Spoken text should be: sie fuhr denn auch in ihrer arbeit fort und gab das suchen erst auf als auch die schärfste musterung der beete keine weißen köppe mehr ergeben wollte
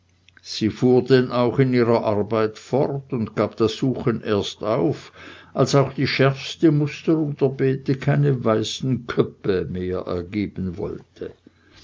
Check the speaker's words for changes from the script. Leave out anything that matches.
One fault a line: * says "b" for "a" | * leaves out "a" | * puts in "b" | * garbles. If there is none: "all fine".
all fine